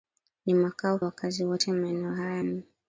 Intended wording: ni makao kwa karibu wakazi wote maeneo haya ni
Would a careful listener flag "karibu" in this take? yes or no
yes